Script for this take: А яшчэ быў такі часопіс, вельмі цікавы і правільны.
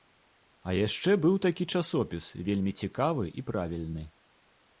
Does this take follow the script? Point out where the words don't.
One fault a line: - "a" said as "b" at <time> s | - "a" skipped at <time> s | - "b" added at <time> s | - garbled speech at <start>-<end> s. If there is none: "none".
none